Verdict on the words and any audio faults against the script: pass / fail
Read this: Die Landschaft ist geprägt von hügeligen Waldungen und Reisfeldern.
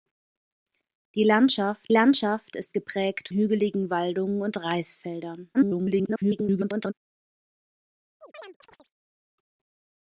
fail